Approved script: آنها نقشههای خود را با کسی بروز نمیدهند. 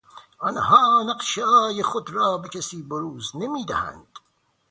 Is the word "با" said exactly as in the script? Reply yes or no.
no